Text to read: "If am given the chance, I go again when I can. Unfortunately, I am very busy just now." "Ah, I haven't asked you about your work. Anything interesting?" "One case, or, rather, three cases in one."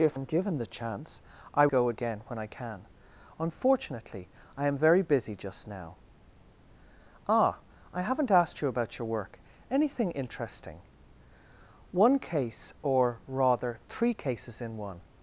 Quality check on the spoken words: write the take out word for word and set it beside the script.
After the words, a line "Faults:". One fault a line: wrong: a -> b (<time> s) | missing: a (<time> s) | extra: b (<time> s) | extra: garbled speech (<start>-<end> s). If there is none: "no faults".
"If am given the chance, I go again when I can. Unfortunately, I am very busy just now." "Ah, I haven't asked you about your work. Anything interesting?" "One case, or, rather, three cases in one."
Faults:
no faults